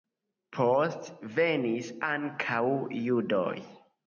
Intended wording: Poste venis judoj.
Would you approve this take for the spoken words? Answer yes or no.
no